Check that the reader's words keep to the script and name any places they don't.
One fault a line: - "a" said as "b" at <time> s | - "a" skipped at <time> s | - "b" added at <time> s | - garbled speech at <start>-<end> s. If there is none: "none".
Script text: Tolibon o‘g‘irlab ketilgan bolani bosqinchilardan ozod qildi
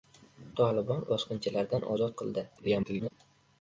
- "o‘g‘irlab ketilgan bolani" skipped at 1.0 s
- garbled speech at 2.6-3.1 s